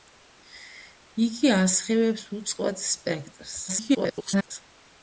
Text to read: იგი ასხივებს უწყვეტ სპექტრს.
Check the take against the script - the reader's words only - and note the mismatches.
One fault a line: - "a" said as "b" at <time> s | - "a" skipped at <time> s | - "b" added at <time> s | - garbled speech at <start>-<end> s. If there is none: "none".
- garbled speech at 3.7-4.5 s